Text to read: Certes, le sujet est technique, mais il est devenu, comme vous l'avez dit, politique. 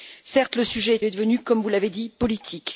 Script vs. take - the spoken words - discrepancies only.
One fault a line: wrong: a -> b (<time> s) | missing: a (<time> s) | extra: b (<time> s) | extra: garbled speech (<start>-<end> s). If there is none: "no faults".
missing: technique mais il (1.0 s)